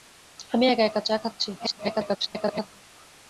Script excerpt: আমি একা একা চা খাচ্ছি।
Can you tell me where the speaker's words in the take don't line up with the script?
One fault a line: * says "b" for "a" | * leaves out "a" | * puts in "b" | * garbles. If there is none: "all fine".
* garbles